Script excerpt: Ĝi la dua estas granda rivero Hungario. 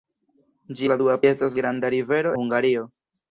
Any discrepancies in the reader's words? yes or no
no